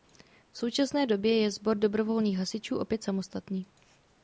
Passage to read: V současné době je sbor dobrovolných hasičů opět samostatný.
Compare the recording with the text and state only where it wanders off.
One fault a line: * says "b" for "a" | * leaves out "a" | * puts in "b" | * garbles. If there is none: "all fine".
all fine